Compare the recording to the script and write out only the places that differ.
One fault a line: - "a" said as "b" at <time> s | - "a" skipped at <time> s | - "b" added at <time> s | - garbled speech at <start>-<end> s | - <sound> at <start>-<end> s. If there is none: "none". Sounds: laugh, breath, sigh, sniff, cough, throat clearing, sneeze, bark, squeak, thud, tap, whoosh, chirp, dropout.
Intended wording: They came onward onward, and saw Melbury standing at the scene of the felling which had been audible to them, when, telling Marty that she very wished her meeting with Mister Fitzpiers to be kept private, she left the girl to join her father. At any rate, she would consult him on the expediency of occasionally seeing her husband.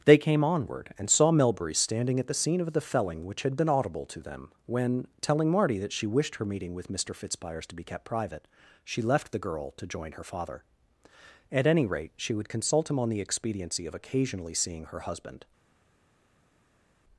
- "onward" skipped at 0.9 s
- "very" skipped at 6.1 s